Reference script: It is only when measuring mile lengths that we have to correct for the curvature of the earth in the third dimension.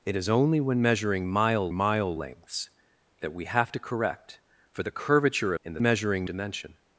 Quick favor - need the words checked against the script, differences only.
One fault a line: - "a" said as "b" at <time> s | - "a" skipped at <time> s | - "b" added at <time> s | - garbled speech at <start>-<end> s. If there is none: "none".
- "mile" added at 1.7 s
- "of the earth" skipped at 5.5 s
- "third" said as "measuring" at 5.8 s